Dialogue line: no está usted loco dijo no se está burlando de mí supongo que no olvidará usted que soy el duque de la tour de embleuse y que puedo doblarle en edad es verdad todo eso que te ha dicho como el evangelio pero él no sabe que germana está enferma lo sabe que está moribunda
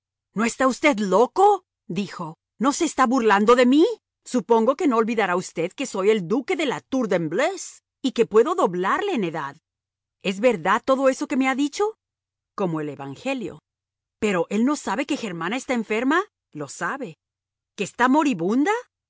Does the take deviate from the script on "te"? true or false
true